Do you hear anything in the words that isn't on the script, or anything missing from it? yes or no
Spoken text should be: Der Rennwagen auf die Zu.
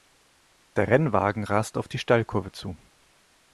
yes